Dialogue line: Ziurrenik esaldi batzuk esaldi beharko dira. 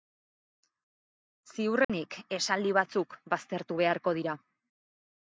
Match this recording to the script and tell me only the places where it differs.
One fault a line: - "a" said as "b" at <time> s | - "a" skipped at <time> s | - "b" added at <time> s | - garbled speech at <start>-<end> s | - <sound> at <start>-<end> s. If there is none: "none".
- dropout at 1.8-1.9 s
- "esaldi" said as "baztertu" at 3.3 s